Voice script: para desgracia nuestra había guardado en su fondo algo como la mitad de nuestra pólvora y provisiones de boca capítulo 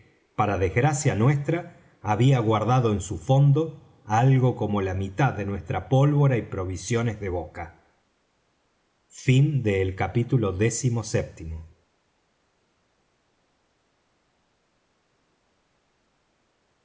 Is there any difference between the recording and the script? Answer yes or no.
no